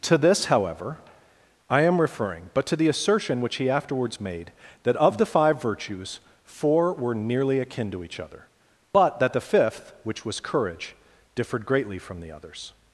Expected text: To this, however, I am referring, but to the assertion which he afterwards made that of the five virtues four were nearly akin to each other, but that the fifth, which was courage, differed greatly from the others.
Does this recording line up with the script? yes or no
yes